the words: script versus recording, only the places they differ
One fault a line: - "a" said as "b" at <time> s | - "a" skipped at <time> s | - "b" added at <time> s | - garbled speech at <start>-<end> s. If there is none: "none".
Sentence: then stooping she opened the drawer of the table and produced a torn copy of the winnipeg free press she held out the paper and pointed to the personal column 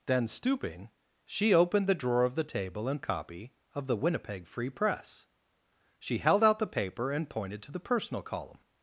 - "produced a torn" skipped at 3.0 s